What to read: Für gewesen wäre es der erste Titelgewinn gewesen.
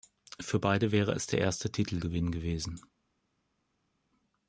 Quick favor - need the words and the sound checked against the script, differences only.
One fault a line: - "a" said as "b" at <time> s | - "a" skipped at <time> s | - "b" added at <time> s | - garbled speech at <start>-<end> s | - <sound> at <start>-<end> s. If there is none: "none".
- "gewesen" said as "beide" at 0.6 s